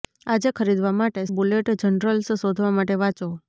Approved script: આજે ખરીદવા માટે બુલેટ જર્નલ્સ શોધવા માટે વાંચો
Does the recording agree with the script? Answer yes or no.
yes